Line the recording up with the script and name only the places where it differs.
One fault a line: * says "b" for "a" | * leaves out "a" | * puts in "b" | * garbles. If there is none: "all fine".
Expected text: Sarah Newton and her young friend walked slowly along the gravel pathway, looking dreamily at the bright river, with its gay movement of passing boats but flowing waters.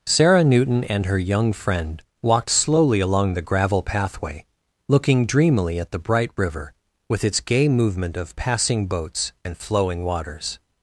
* says "and" for "but"